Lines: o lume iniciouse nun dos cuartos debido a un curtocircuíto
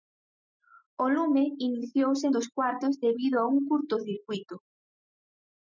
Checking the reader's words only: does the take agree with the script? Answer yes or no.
no